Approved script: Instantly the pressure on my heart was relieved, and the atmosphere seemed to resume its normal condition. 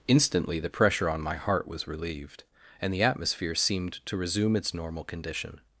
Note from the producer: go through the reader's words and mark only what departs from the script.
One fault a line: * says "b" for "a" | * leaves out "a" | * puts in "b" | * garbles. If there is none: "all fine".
all fine